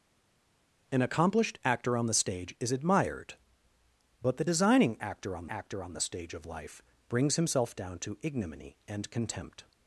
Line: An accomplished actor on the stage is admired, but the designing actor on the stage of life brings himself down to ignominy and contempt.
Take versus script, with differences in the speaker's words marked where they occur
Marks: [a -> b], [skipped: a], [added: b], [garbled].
An accomplished actor on the stage is admired, but the designing actor on [added: actor on] the stage of life brings himself down to ignominy and contempt.